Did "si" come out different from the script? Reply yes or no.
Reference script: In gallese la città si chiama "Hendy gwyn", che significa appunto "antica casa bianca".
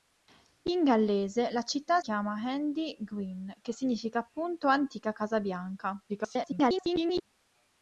yes